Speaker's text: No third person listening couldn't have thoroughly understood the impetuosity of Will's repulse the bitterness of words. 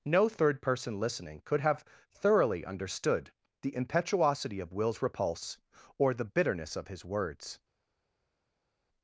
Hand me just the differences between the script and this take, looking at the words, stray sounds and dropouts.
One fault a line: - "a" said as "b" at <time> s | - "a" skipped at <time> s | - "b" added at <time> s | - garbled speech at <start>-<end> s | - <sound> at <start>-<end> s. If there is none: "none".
- "couldn't" said as "could" at 1.4 s
- "or" added at 6.0 s
- "his" added at 6.9 s